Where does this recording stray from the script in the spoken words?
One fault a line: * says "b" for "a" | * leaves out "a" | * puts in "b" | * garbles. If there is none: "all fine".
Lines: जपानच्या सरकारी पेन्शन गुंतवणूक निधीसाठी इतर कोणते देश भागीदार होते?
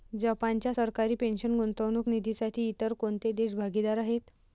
* says "आहेत" for "होते"